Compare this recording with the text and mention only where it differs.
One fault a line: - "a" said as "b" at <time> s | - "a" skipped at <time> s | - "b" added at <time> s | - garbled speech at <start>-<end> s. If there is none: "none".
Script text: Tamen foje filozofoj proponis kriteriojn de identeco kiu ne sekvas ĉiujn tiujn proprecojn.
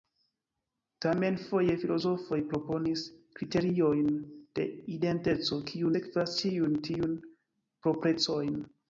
- "ne" skipped at 5.9 s